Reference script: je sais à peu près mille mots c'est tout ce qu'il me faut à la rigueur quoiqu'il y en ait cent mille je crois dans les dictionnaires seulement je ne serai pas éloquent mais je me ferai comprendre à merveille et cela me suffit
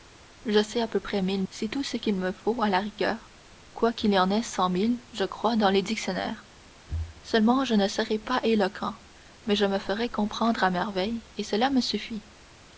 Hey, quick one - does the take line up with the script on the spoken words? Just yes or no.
no